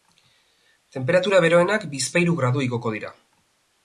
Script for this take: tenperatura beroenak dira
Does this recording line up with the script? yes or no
no